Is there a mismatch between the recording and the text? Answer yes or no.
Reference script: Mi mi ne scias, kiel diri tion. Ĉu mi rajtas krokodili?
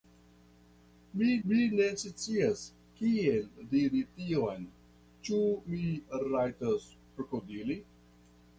no